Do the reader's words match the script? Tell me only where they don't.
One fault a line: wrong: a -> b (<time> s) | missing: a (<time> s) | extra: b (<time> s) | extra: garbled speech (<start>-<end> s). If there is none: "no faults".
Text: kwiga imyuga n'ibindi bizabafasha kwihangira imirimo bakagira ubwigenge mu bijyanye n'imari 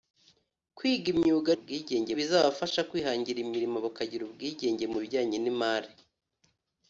wrong: n'ibindi -> ubwigenge (1.5 s)